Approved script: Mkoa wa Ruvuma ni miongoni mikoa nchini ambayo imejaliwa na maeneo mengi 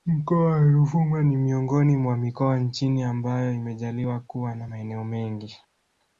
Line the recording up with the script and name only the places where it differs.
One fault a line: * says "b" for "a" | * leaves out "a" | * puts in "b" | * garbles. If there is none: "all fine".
* puts in "mwa"
* puts in "kuwa"